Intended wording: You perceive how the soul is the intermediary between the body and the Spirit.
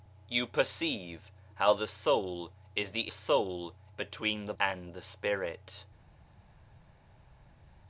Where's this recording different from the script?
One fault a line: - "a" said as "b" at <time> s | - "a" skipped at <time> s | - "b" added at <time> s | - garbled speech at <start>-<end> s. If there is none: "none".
- "intermediary" said as "soul" at 3.1 s
- "body" skipped at 4.5 s